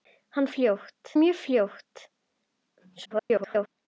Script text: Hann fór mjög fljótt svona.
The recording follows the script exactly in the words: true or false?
false